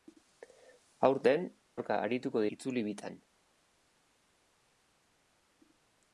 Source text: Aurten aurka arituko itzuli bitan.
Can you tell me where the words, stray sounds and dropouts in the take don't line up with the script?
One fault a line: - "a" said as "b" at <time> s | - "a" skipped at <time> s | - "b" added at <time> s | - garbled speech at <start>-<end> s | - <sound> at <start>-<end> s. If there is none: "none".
none